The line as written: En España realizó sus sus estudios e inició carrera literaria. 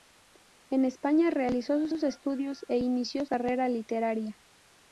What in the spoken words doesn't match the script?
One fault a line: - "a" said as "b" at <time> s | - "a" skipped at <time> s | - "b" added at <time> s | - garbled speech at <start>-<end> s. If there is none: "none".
none